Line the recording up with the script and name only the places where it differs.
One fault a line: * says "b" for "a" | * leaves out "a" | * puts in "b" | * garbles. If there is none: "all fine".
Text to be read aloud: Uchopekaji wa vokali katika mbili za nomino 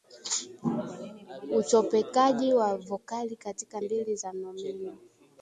all fine